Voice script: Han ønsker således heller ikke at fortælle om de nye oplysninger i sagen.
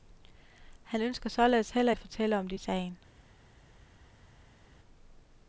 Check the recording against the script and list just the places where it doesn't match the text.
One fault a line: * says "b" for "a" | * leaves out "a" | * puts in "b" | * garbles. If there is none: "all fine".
* leaves out "ikke"
* leaves out "nye oplysninger"